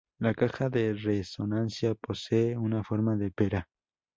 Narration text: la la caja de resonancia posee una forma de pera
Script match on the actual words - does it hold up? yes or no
no